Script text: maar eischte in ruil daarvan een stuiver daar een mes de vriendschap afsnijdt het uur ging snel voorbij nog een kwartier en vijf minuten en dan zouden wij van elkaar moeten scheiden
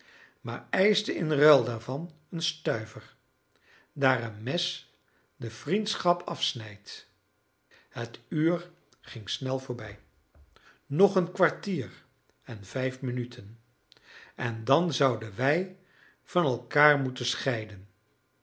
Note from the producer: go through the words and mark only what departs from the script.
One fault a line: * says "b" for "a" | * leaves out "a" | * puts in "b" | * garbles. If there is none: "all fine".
all fine